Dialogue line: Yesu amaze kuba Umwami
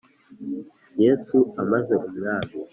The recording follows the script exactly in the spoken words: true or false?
false